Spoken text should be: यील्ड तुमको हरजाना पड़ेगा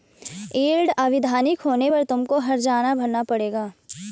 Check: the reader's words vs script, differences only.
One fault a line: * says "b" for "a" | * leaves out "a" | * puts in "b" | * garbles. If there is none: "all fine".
* puts in "अवैधानिक होने पर"
* puts in "भरना"